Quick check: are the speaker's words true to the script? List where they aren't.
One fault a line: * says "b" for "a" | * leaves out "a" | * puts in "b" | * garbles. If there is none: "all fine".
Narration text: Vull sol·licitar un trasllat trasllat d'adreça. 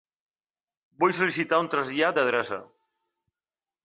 * leaves out "trasllat"